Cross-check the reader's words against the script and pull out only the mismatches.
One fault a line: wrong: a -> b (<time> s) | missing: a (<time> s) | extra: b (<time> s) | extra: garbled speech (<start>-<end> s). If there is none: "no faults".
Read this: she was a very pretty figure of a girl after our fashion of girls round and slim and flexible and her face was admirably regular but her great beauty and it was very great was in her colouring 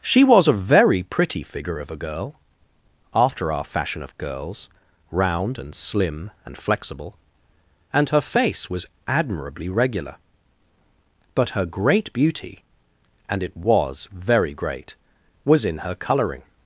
no faults